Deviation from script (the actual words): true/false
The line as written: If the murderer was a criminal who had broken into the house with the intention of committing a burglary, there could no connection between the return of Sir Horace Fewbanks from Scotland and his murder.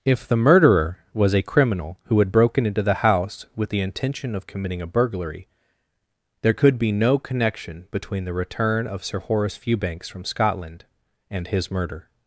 true